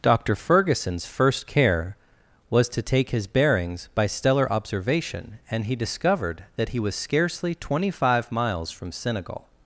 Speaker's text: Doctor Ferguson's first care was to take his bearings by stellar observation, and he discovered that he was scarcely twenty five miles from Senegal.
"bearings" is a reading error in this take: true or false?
false